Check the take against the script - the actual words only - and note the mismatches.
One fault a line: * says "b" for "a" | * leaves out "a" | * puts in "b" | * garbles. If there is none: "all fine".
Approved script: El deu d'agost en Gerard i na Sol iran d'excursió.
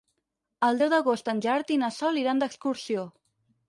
all fine